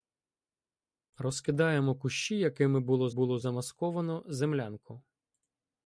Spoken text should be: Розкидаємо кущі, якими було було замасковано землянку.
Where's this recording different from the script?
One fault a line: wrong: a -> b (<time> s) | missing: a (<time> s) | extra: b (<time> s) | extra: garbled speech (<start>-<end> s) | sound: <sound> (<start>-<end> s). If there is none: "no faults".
no faults